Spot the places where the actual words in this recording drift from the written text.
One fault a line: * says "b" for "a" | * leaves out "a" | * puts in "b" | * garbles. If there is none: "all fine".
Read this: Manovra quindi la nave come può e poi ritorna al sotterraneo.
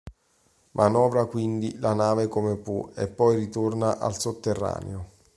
all fine